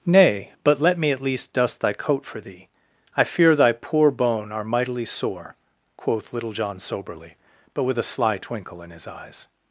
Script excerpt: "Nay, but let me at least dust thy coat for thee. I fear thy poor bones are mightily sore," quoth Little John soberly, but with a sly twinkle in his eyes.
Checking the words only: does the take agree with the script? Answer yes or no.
no